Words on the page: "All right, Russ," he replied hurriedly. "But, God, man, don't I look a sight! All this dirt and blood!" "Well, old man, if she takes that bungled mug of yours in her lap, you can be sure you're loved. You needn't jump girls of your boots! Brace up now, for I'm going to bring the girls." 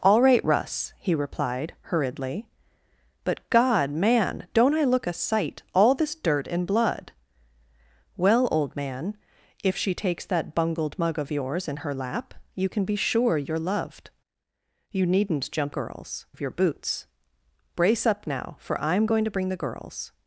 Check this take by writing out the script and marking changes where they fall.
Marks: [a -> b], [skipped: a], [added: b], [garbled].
"All right, Russ," he replied hurriedly. "But, God, man, don't I look a sight! All this dirt and blood!" "Well, old man, if she takes that bungled mug of yours in her lap, you can be sure you're loved. You needn't jump girls of your boots! Brace up now, for I'm going to bring the girls."